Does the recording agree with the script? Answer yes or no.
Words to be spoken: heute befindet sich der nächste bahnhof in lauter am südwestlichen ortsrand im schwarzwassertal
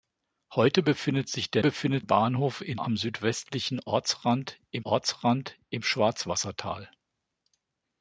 no